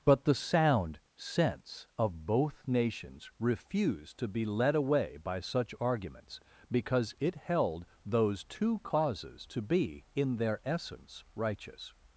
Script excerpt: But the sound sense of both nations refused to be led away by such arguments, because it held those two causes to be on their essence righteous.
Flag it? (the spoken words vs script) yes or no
yes